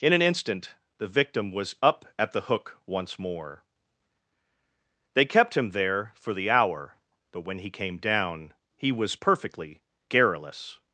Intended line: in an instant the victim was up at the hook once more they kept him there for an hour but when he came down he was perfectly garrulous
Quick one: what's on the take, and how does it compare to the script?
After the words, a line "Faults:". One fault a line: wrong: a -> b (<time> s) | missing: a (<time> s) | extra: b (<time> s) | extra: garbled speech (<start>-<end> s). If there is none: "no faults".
in an instant the victim was up at the hook once more they kept him there for the hour but when he came down he was perfectly garrulous
Faults:
wrong: an -> the (6.3 s)